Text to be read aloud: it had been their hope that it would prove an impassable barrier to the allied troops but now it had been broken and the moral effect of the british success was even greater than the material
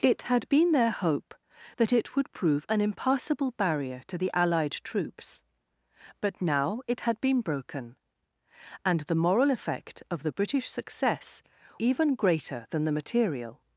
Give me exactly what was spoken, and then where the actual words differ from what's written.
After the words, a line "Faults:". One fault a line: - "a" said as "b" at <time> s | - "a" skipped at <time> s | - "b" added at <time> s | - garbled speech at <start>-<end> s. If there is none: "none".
it had been their hope that it would prove an impassable barrier to the allied troops but now it had been broken and the moral effect of the british success even greater than the material
Faults:
- "was" skipped at 11.4 s